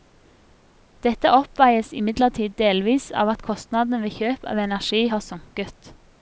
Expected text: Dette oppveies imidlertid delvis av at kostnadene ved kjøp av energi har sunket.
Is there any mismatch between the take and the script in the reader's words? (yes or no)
no